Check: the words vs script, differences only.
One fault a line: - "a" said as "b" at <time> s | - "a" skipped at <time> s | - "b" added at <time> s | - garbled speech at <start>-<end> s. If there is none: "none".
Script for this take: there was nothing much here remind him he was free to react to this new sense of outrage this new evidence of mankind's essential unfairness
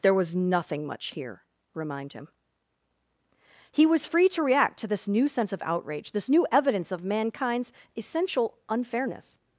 none